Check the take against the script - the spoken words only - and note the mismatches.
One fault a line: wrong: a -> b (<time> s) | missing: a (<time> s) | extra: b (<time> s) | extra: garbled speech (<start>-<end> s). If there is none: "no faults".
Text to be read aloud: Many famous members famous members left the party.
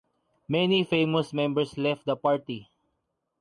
missing: famous members (1.8 s)